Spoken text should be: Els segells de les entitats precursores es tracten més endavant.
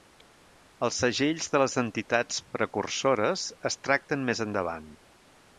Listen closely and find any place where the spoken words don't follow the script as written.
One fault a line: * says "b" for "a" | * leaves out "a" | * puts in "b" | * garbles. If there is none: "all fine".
all fine